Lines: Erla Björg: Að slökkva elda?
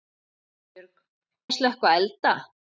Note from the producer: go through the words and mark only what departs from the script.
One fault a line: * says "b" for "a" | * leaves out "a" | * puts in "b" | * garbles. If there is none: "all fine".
all fine